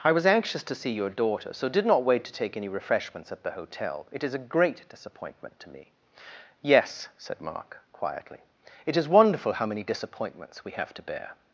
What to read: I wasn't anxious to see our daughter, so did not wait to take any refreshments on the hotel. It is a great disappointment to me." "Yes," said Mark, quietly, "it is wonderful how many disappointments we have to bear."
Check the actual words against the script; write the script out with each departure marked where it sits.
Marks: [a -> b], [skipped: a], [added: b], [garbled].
I [wasn't -> was] anxious to see [our -> your] daughter, so did not wait to take any refreshments [on -> at] the hotel. It is a great disappointment to me." "Yes," said Mark, quietly, "it is wonderful how many disappointments we have to bear."